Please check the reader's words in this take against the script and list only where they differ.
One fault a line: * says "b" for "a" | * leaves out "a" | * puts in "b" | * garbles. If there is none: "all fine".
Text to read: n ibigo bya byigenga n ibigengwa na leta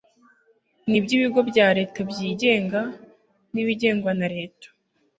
* puts in "iby"
* puts in "leta"